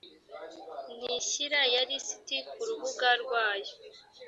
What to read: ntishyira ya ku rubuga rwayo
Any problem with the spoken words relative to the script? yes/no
yes